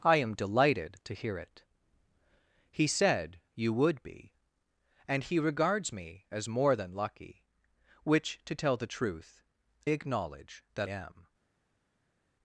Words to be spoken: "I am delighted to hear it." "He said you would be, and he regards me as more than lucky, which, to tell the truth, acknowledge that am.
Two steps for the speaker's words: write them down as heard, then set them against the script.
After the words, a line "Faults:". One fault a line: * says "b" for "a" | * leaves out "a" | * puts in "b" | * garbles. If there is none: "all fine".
"I am delighted to hear it." "He said you would be, and he regards me as more than lucky, which, to tell the truth, acknowledge that am.
Faults:
all fine